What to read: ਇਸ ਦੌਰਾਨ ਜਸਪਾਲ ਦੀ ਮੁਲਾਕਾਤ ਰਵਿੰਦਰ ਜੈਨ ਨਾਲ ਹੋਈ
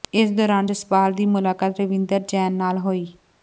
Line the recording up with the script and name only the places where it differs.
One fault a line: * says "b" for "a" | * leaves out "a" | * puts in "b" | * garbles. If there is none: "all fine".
all fine